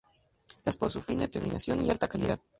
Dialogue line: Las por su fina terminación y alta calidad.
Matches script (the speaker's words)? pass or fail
pass